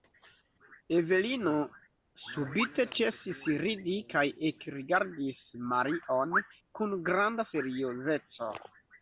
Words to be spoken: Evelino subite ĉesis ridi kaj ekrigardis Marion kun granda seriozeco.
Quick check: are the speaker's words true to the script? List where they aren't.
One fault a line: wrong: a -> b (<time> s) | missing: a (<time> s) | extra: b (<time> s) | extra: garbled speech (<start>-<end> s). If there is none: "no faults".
no faults